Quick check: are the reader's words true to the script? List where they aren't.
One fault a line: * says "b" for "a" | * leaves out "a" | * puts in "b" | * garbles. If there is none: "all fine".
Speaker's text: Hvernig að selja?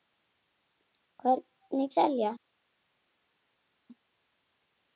all fine